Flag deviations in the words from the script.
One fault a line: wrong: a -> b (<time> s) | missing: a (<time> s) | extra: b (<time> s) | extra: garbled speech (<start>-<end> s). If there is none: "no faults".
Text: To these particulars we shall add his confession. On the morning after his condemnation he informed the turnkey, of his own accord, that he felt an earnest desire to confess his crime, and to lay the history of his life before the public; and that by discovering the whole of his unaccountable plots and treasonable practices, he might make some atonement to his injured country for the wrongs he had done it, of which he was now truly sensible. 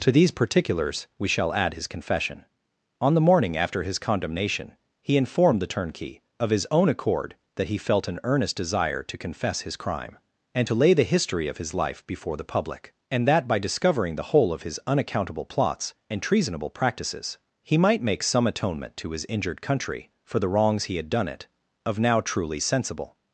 missing: which he was (22.0 s)